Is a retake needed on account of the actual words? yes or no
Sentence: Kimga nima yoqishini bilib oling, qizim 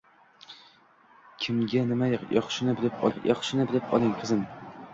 yes